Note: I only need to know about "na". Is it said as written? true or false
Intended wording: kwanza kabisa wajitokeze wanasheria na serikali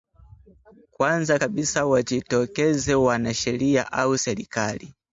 false